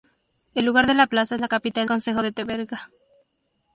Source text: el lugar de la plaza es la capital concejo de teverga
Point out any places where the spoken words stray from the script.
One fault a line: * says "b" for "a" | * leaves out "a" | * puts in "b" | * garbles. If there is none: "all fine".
all fine